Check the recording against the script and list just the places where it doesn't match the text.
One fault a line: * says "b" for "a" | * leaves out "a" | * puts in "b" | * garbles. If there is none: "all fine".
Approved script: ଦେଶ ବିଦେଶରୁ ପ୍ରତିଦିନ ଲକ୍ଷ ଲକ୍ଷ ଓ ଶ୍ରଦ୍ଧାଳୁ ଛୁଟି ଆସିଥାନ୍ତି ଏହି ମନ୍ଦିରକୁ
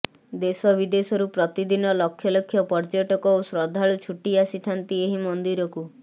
* puts in "ପର୍ଯ୍ୟଟକ"